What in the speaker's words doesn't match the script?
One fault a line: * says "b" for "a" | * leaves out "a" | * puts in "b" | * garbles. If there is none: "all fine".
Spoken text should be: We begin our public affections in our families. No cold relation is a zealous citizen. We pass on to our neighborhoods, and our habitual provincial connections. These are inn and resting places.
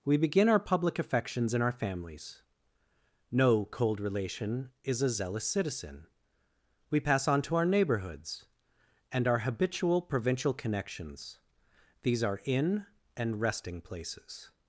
all fine